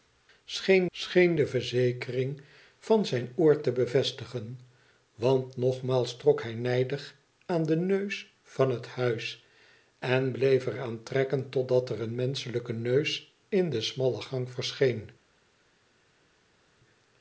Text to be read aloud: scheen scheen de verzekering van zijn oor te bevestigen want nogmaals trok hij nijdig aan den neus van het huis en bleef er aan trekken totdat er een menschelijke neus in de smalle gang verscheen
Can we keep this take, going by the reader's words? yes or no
yes